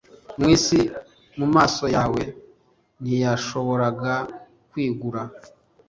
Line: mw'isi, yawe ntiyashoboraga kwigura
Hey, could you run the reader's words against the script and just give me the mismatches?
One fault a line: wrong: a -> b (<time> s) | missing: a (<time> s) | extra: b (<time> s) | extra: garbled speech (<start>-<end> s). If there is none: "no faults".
extra: mumaso (1.4 s)